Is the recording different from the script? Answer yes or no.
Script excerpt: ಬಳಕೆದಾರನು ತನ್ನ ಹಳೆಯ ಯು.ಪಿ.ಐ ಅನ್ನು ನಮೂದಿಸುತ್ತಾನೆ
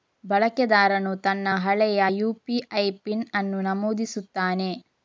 yes